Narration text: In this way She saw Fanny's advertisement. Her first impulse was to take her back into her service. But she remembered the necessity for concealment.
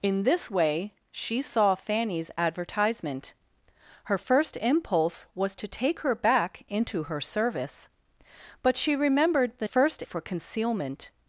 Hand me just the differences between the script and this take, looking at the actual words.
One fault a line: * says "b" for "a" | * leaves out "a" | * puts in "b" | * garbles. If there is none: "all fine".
* says "first" for "necessity"